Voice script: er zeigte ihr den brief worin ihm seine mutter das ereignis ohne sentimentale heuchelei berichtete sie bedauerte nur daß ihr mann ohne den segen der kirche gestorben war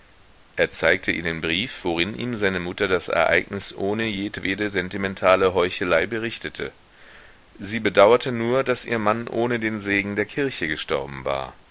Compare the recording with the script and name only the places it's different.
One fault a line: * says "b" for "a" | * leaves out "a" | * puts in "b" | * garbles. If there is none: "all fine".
* puts in "jedwede"